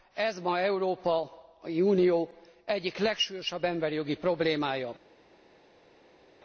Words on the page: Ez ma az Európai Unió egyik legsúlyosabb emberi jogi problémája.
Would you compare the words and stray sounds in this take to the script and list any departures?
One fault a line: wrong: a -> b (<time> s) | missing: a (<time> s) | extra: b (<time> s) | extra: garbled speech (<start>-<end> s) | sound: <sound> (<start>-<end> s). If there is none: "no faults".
no faults